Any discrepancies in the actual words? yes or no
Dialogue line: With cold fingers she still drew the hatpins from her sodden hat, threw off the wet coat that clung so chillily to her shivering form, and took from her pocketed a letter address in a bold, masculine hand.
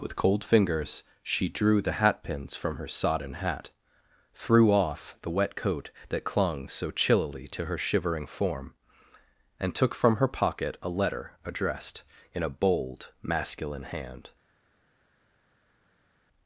yes